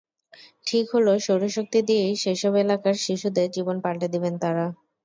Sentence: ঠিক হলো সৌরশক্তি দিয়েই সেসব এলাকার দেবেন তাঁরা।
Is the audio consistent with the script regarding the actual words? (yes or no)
no